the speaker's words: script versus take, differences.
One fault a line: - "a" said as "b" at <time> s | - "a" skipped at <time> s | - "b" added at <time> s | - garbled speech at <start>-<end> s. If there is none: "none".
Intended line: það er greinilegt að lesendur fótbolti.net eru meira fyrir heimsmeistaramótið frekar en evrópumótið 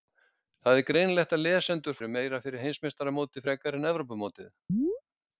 - "fótbolti.net" skipped at 2.0 s